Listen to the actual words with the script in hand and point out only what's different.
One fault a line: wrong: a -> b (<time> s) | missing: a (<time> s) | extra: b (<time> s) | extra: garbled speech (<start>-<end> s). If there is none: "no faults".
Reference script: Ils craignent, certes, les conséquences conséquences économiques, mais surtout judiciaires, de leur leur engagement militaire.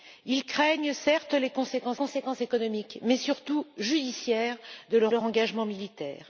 no faults